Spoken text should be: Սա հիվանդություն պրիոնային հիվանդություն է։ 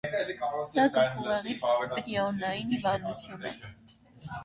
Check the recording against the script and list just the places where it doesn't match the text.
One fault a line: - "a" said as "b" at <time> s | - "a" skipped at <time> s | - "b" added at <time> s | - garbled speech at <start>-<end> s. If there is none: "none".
- "հիվանդություն" said as "գլխուղեղի" at 0.9 s